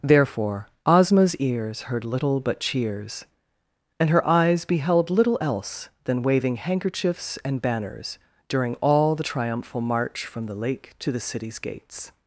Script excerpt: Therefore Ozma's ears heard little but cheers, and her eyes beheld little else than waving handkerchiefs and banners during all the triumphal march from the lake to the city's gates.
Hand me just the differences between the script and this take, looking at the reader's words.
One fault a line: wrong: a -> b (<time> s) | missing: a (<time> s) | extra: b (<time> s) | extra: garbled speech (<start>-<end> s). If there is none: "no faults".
no faults